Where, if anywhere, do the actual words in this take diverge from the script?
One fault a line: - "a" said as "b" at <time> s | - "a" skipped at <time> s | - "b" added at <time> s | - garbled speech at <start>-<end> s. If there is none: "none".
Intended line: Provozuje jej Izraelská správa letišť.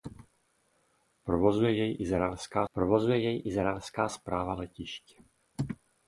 - "provozuje jej Izraelská" added at 2.7 s